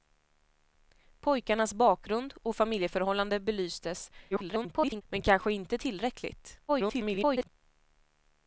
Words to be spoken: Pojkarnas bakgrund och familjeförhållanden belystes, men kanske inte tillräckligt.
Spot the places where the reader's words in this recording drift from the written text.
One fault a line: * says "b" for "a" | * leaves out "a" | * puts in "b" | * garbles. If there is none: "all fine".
* garbles
* garbles